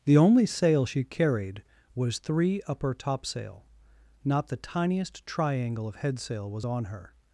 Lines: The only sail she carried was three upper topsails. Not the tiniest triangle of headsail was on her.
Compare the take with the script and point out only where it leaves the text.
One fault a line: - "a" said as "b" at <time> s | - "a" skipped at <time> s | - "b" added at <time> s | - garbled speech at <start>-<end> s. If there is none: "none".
- "topsails" said as "topsail" at 2.9 s